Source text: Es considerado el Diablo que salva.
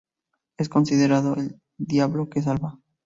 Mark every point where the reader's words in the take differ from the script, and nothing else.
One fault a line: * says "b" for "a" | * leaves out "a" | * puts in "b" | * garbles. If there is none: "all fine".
all fine